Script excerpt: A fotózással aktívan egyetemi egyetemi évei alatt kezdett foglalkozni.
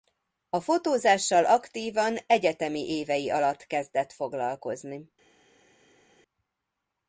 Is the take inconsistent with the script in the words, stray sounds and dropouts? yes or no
yes